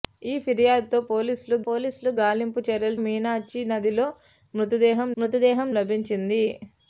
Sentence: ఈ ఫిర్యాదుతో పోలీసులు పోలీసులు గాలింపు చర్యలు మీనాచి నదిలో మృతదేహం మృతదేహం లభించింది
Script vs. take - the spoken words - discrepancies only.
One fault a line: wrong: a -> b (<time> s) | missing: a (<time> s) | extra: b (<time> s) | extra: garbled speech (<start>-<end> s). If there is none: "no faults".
no faults